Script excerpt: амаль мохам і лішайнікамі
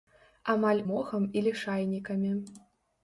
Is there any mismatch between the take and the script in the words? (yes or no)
no